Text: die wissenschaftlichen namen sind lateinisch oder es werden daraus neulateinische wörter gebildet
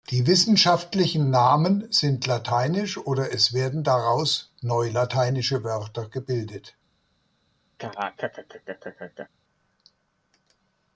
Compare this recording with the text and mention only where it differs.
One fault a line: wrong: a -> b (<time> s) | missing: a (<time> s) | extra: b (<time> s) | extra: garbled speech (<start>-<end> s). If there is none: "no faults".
no faults